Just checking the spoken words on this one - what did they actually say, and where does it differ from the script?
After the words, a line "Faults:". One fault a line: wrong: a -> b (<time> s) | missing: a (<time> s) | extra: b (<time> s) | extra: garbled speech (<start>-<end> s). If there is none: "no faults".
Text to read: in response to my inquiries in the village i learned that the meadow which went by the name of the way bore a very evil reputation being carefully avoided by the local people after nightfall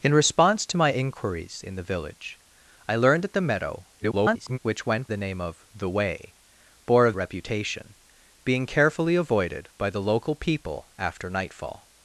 in response to my inquiries in the village i learned that the meadow [garbled] which went the name of the way bore a reputation being carefully avoided by the local people after nightfall
Faults:
extra: garbled speech (4.0-4.6 s)
missing: by (5.1 s)
missing: very evil (7.1 s)